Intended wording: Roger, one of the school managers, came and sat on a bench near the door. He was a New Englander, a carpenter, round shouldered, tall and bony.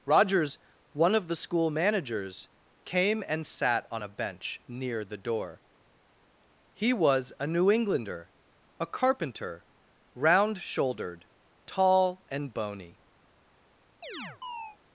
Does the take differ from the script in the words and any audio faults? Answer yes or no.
yes